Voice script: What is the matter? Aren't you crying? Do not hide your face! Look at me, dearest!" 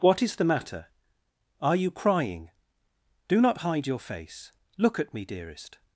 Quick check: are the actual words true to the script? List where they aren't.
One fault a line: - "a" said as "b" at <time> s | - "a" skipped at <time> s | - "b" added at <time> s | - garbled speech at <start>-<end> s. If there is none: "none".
- "Aren't" said as "Are" at 1.6 s